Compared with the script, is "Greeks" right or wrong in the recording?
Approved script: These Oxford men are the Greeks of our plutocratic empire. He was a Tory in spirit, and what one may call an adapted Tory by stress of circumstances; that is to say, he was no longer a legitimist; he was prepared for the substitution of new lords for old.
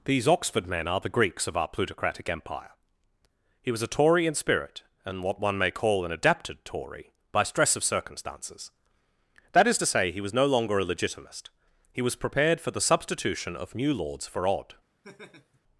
right